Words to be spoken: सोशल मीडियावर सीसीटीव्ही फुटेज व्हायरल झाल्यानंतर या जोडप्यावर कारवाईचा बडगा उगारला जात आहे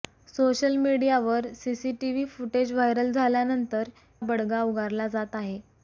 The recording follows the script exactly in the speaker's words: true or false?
false